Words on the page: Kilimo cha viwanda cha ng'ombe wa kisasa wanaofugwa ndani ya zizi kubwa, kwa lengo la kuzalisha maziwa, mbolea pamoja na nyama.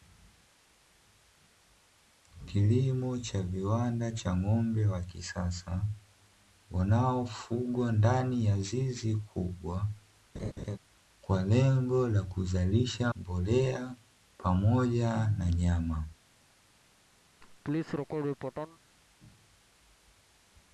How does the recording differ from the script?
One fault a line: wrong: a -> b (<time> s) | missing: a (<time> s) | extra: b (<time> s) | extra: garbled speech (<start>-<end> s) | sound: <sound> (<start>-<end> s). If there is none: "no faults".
sound: laugh (10.3-10.8 s)
missing: maziwa (13.1 s)
sound: laugh (17.4-18.8 s)